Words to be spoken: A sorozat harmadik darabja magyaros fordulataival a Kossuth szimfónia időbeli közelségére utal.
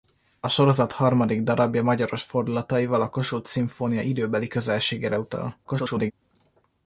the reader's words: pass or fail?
fail